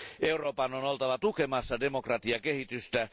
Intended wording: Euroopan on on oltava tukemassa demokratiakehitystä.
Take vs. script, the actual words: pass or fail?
fail